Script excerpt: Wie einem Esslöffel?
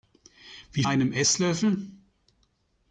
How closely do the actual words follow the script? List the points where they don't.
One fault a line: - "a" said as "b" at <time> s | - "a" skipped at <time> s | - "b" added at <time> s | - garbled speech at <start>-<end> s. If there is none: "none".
none